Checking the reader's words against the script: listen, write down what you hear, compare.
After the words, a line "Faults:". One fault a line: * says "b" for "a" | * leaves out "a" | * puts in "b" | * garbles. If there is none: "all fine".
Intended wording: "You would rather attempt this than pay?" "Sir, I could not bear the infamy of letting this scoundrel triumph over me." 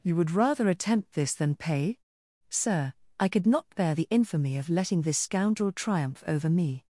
"You would rather attempt this than pay?" "Sir, I could not bear the infamy of letting this scoundrel triumph over me."
Faults:
all fine